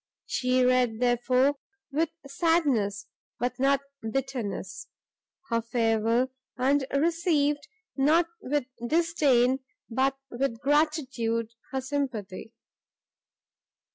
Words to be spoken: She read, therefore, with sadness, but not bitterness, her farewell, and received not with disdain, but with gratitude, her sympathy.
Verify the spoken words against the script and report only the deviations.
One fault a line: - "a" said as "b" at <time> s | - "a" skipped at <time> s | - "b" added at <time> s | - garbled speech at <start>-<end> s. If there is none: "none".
none